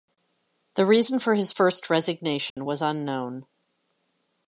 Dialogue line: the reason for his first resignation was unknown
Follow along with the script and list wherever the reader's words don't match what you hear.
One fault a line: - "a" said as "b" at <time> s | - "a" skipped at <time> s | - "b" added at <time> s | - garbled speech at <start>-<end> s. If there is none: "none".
none